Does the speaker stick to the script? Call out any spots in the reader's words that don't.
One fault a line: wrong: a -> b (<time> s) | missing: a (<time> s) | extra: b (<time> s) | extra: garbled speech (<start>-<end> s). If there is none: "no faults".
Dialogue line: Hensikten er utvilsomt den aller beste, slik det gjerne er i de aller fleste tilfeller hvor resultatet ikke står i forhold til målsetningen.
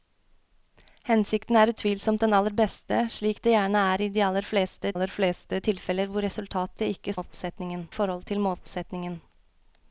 extra: aller fleste (4.9 s)
wrong: står -> målsetningen (7.2 s)